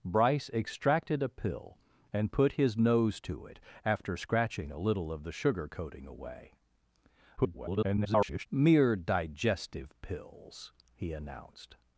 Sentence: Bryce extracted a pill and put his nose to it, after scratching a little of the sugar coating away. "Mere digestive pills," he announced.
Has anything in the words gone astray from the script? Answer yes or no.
yes